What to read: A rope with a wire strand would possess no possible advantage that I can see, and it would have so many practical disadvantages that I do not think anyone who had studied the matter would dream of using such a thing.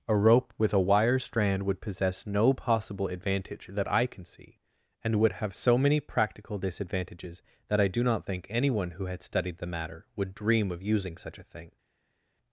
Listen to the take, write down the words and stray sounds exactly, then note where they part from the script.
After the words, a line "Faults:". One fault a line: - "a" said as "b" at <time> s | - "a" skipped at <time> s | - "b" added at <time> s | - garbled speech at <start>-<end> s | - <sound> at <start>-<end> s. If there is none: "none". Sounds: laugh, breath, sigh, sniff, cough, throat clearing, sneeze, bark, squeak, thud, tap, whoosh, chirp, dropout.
A rope with a wire strand would possess no possible advantage that I can see, and would have so many practical disadvantages that I do not think anyone who had studied the matter would dream of using such a thing.
Faults:
- "it" skipped at 5.2 s